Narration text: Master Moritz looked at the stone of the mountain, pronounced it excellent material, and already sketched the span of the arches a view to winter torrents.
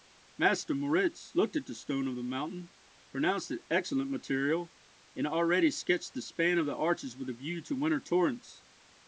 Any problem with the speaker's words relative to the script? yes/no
yes